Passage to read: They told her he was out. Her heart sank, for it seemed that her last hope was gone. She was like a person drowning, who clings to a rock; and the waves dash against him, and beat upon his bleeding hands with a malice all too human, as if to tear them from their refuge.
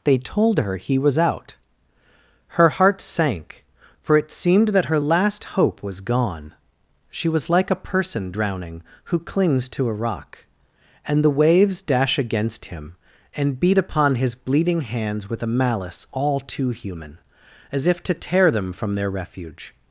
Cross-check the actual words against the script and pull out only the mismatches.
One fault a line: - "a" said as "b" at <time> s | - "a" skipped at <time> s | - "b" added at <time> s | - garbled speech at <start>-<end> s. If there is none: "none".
none